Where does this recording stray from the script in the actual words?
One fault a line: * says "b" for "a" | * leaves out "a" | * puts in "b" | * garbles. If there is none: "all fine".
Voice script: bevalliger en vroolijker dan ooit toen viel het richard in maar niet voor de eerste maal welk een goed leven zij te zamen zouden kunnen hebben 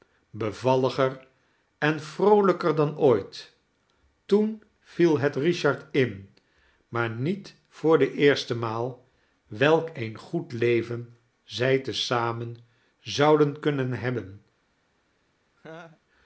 all fine